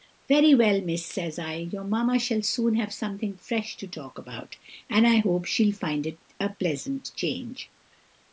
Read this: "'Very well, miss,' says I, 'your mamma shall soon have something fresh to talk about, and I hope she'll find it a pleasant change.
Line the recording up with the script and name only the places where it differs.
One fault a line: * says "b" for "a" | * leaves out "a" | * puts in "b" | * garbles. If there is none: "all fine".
all fine